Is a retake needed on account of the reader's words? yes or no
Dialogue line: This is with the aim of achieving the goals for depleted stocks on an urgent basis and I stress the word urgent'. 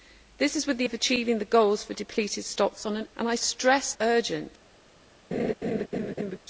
yes